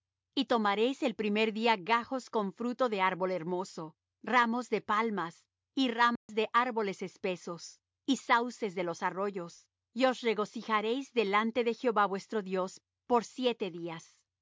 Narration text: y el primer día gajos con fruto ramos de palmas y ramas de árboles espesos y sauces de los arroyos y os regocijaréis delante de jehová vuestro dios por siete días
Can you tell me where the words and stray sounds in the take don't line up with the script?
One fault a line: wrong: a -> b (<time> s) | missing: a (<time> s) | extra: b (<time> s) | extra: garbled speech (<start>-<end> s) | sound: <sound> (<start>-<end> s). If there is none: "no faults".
extra: tomaréis (0.5 s)
extra: de árbol hermoso (2.9 s)
sound: dropout (6.2-6.3 s)